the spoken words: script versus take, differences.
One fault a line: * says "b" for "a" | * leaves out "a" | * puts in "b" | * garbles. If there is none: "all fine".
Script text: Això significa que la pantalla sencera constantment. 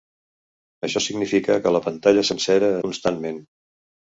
all fine